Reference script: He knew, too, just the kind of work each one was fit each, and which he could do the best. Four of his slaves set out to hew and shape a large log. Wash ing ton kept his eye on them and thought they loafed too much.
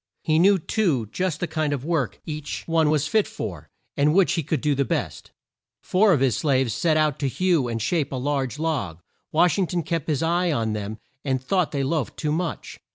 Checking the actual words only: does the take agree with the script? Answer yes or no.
no